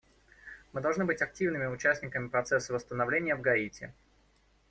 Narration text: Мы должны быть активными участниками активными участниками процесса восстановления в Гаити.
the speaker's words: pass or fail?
fail